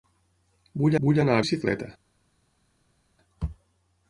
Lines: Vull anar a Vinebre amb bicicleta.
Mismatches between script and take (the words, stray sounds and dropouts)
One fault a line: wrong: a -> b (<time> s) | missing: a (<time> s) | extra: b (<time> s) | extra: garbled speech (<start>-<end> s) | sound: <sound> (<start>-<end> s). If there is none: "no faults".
extra: vull (1.1 s)
missing: Vinebre amb (1.4 s)